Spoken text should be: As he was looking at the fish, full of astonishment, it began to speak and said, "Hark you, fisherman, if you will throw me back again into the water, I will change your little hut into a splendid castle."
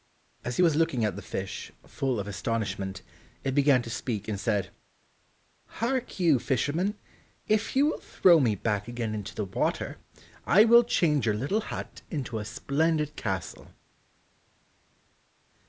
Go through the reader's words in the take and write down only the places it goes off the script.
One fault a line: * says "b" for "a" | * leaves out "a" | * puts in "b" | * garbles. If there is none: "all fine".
all fine